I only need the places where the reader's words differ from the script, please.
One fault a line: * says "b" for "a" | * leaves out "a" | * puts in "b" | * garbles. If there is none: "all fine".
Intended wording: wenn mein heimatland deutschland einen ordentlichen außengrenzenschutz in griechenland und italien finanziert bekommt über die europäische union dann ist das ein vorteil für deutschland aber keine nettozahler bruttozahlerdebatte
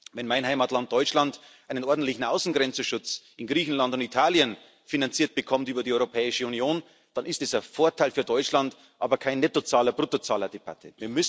all fine